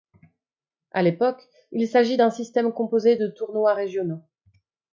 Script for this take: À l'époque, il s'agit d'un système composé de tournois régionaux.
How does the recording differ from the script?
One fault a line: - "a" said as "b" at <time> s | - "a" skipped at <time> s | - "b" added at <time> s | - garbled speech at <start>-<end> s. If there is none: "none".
none